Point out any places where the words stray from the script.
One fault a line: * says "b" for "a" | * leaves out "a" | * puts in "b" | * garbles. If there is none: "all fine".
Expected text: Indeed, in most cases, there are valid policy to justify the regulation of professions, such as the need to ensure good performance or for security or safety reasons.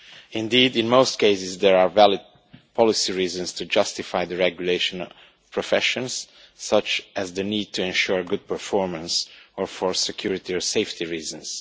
* puts in "reasons"